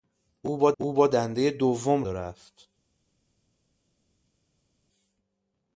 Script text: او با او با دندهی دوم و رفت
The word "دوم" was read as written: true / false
true